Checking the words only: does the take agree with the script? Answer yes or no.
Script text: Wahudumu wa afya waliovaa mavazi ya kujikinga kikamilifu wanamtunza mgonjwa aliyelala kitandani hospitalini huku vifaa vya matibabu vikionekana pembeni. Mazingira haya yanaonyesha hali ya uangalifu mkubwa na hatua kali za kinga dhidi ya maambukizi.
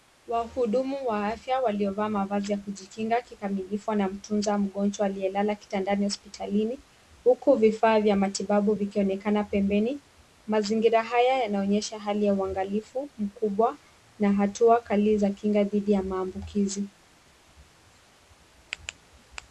yes